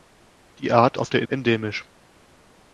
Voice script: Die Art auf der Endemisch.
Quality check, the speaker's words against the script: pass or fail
pass